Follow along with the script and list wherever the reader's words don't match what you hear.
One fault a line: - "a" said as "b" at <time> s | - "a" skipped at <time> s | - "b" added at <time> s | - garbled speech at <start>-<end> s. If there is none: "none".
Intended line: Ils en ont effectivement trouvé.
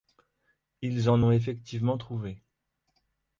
none